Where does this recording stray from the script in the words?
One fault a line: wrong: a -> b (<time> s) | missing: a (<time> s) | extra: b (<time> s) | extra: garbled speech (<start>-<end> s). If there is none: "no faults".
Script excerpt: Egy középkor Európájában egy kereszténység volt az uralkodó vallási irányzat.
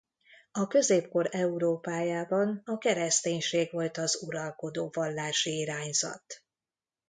wrong: Egy -> A (0.5 s)
wrong: egy -> a (2.6 s)